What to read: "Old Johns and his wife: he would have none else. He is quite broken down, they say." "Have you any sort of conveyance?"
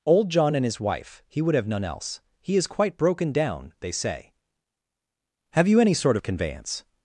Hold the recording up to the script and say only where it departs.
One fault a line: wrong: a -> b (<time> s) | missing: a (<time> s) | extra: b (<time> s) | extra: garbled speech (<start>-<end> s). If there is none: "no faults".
wrong: Johns -> John (0.3 s)